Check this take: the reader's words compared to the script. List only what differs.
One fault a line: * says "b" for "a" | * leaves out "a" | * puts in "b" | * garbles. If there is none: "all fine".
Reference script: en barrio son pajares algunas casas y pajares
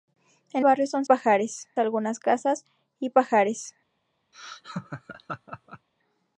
all fine